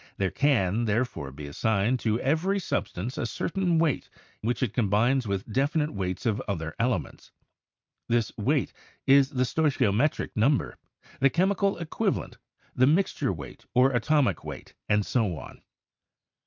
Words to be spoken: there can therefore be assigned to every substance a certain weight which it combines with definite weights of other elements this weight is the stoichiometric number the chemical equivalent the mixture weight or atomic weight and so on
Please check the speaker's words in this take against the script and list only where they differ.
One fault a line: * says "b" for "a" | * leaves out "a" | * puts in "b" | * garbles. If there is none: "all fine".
all fine